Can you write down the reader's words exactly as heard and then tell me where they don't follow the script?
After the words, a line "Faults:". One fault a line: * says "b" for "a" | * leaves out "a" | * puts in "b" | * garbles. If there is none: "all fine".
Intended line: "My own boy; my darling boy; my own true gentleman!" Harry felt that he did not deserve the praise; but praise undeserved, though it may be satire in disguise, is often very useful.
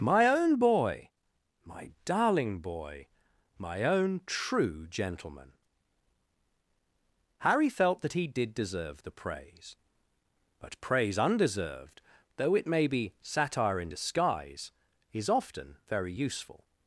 "My own boy; my darling boy; my own true gentleman!" Harry felt that he did deserve the praise; but praise undeserved, though it may be satire in disguise, is often very useful.
Faults:
* leaves out "not"